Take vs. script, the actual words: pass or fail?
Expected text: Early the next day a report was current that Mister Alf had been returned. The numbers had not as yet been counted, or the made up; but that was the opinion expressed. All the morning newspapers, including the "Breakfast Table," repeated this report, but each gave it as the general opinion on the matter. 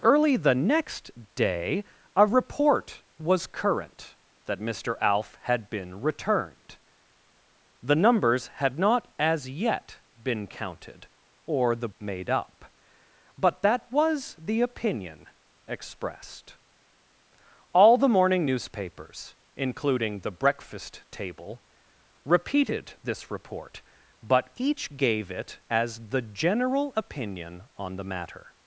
pass